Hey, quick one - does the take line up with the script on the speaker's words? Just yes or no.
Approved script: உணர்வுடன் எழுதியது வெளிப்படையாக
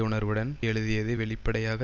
yes